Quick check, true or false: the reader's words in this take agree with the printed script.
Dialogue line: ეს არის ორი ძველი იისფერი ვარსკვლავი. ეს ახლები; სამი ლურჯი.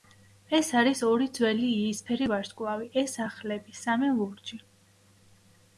true